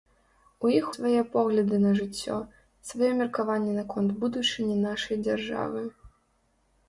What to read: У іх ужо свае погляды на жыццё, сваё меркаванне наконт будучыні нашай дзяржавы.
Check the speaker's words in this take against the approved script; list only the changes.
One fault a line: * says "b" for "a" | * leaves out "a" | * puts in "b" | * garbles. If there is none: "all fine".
* leaves out "ужо"